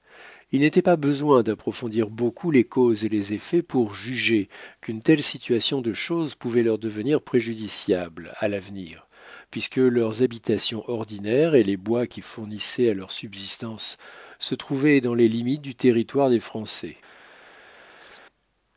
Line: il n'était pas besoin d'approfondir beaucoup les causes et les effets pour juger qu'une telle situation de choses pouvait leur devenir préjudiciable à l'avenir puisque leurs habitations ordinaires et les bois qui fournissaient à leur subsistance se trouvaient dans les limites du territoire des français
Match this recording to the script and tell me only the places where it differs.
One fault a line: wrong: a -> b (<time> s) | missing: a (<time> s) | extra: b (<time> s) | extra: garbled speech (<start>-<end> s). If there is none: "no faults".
no faults